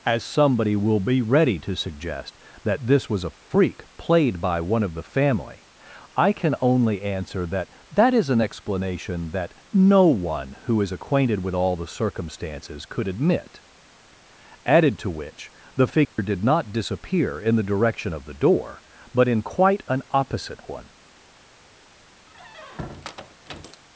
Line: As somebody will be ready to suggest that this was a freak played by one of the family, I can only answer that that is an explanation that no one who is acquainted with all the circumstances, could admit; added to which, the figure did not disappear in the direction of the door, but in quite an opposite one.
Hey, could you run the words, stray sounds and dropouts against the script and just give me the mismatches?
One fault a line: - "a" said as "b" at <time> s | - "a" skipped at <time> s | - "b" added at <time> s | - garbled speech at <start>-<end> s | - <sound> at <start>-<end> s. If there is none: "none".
- dropout at 16.0-16.2 s
- squeak at 22.3-23.8 s